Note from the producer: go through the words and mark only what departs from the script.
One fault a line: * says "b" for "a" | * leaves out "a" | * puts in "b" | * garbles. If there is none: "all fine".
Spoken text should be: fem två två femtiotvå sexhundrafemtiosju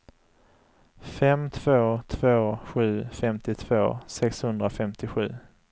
* puts in "sju"